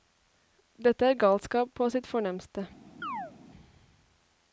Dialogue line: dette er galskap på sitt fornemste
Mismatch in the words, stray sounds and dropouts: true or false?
true